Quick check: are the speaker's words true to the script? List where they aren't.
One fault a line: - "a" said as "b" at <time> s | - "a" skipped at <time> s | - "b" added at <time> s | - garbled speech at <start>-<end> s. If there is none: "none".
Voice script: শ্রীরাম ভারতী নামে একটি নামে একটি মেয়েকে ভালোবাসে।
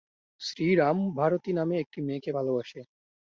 - "নামে একটি" skipped at 2.0 s